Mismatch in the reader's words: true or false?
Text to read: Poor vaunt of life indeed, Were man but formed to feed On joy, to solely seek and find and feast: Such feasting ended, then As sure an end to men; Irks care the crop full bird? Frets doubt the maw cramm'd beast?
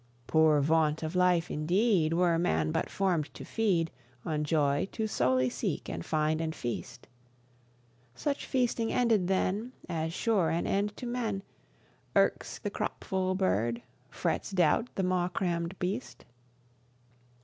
true